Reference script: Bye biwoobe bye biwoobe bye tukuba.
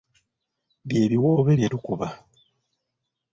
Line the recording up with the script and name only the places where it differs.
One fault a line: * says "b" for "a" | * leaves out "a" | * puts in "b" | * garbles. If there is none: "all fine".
* leaves out "biwoobe bye"